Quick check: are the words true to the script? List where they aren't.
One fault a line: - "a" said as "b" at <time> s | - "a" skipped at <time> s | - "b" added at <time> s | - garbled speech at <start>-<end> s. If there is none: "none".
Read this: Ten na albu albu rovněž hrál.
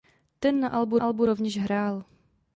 none